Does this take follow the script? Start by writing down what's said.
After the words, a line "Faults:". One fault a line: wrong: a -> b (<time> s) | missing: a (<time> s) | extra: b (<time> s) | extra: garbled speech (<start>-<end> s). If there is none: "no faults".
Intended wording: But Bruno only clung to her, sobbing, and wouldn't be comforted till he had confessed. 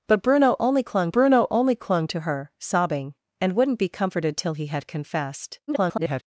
But Bruno only clung Bruno only clung to her, sobbing, and wouldn't be comforted till he had confessed. [garbled]
Faults:
extra: Bruno only clung (1.1 s)
extra: garbled speech (5.7-6.2 s)